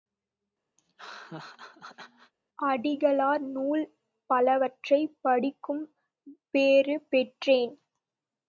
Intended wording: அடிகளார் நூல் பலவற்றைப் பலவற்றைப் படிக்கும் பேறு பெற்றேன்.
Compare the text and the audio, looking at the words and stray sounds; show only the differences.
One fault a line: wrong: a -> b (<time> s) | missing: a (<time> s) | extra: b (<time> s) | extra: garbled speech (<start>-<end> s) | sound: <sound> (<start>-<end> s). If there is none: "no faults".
sound: laugh (0.8-2.3 s)
missing: பலவற்றைப் (5.2 s)